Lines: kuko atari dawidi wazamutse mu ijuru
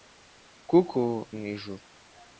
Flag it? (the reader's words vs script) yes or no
yes